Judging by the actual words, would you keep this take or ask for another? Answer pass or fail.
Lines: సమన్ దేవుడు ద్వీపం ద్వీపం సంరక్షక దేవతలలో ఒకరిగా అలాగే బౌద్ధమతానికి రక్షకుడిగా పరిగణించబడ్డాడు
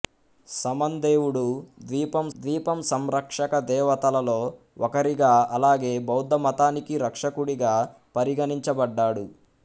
pass